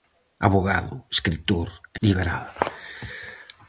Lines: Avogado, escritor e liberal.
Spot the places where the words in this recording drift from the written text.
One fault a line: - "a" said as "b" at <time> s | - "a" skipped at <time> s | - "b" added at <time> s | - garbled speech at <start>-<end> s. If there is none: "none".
none